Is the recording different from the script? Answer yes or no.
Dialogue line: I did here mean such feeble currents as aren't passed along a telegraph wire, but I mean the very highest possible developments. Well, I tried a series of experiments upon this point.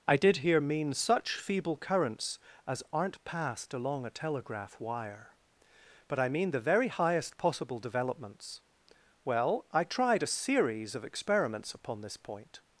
no